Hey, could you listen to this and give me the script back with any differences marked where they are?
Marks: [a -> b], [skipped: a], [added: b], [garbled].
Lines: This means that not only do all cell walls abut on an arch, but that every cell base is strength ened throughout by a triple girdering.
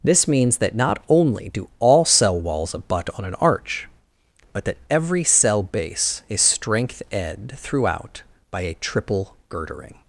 This means that not only do all cell walls abut on an arch, but that every cell base is strength [ened -> ed] throughout by a triple girdering.